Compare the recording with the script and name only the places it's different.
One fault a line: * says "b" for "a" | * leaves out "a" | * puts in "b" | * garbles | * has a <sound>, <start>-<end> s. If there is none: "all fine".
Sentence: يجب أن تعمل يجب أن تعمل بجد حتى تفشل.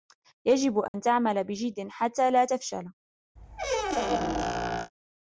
* has a dropout, 0.9-0.9 s
* leaves out "يجب أن تعمل"
* puts in "لا"
* has a squeak, 3.4-4.9 s